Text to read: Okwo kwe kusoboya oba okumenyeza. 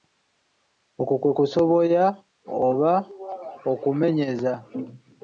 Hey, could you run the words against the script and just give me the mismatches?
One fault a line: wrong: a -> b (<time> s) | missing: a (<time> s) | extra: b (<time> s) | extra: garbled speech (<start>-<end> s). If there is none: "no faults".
no faults